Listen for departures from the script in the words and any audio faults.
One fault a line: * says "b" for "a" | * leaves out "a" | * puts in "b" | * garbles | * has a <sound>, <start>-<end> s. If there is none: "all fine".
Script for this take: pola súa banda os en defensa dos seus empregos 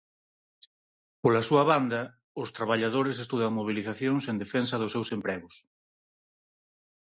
* puts in "traballadores estudan mobilizacións"